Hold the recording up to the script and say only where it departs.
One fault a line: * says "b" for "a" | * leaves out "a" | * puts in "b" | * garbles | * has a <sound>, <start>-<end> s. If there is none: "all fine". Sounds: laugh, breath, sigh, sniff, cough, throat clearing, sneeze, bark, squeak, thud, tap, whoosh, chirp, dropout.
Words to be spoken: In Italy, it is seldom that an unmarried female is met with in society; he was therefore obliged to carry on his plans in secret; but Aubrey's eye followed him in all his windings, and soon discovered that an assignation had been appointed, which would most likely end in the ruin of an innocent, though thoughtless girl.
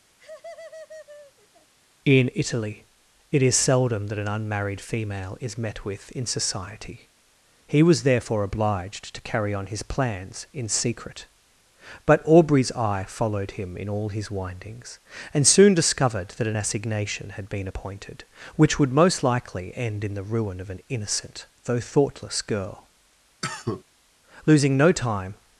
* has a laugh, 0.2-1.7 s
* has a cough, 23.4-23.8 s
* puts in "Losing no time"